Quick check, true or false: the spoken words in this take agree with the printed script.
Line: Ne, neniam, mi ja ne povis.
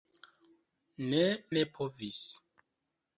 false